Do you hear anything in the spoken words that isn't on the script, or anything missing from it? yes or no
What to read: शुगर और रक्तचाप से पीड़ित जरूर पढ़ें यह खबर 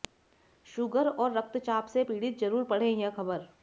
no